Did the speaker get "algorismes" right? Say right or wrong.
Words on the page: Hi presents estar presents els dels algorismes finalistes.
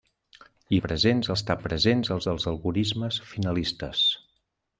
right